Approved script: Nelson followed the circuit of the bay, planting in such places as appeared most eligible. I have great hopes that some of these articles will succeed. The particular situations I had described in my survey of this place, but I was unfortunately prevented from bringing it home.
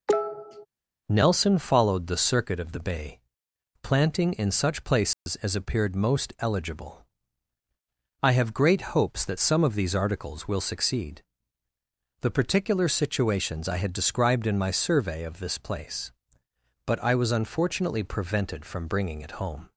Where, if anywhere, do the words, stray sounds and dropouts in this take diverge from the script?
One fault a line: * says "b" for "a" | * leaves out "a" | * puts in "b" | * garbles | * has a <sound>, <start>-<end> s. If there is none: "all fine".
* has a cough, 0.1-0.7 s
* has a dropout, 5.1-5.3 s